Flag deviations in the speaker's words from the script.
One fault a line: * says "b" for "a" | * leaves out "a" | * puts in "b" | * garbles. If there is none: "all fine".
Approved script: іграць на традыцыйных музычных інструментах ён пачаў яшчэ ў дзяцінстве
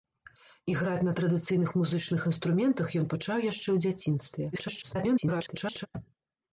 * garbles